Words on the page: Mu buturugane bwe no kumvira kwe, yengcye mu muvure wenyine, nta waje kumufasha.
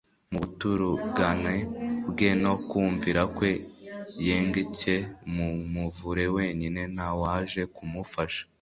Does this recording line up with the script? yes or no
yes